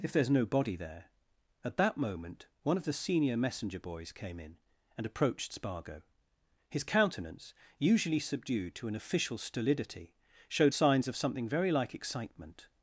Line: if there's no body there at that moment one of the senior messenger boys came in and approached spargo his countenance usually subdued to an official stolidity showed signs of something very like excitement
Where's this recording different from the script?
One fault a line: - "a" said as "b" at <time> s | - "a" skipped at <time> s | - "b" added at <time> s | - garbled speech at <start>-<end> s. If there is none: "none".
none